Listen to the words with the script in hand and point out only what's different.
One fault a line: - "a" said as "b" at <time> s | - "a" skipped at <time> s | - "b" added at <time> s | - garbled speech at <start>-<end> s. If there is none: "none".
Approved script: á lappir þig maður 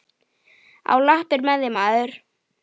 - "með" added at 1.5 s